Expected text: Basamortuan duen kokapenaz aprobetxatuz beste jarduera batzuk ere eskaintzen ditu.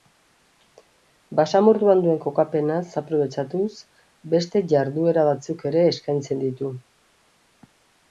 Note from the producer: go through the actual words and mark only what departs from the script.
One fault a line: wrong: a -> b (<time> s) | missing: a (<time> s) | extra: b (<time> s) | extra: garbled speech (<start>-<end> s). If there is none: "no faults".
no faults